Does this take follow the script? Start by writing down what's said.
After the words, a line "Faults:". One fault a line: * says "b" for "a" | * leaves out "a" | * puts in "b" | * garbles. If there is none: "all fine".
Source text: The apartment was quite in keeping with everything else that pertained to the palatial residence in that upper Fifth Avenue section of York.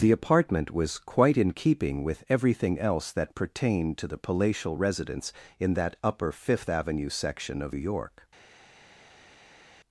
The apartment was quite in keeping with everything else that pertained to the palatial residence in that upper Fifth Avenue section of York.
Faults:
all fine